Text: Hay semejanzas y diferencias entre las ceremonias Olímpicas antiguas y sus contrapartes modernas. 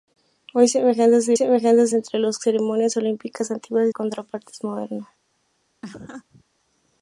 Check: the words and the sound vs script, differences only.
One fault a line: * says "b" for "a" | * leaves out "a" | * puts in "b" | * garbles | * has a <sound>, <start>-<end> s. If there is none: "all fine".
* says "semejanzas" for "diferencias"
* leaves out "sus"
* has a laugh, 5.8-6.4 s